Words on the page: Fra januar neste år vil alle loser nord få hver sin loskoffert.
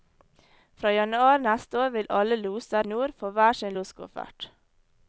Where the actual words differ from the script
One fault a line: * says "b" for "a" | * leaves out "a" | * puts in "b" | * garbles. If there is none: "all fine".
all fine